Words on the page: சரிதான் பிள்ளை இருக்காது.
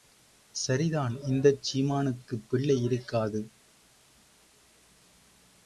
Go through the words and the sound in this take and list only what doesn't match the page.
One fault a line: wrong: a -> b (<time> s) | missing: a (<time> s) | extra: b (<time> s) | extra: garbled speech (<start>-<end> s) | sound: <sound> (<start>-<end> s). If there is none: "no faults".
extra: இந்தச் சீமானுக்குப் (1.2 s)